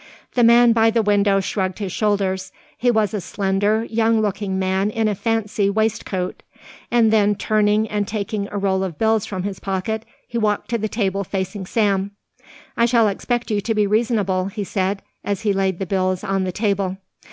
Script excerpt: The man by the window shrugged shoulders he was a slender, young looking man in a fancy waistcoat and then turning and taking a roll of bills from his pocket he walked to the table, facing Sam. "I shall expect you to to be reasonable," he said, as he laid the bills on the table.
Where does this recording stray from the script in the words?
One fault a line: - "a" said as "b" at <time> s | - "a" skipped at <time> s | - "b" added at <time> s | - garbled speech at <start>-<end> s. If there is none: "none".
- "his" added at 1.8 s
- "to" skipped at 13.7 s